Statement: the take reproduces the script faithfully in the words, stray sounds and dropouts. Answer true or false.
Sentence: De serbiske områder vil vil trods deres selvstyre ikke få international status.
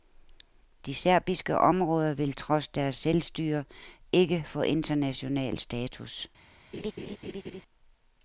false